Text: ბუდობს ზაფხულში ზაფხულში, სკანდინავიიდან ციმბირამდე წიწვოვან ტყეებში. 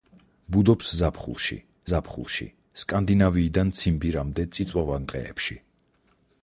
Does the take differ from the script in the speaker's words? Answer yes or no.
no